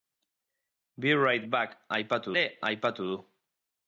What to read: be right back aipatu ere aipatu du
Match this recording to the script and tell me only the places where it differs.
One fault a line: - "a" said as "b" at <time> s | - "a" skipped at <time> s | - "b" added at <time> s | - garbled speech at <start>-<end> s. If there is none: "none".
none